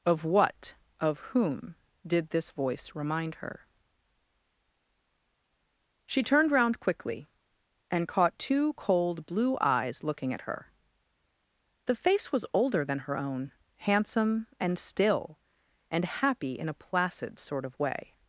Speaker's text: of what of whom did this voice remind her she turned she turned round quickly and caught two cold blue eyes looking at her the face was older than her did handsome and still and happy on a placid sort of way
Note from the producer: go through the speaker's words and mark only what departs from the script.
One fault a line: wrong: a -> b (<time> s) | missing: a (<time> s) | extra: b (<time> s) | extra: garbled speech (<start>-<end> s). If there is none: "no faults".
missing: she turned (6.5 s)
wrong: did -> own (13.2 s)
wrong: on -> in (16.6 s)